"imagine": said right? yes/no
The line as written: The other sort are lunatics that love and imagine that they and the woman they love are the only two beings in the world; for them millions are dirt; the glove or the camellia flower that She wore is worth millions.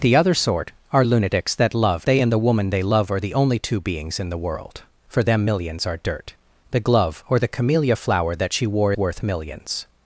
no